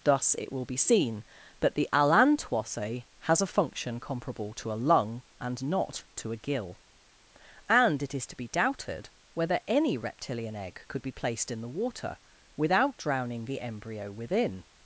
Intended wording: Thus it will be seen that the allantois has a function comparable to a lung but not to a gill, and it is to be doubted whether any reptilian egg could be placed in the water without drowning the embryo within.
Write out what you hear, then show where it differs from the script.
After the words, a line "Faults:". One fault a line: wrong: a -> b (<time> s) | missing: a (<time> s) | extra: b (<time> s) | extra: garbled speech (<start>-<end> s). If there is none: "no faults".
Thus it will be seen that the allantois has a function comparable to a lung and not to a gill, and it is to be doubted whether any reptilian egg could be placed in the water without drowning the embryo within.
Faults:
wrong: but -> and (5.4 s)